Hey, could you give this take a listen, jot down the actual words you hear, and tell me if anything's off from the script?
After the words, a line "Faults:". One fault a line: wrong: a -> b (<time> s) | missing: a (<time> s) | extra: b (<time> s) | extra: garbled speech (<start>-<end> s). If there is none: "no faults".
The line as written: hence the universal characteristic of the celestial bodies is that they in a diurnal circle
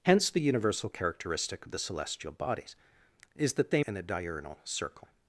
hence the universal characteristic of the celestial bodies is that they in a diurnal circle
Faults:
no faults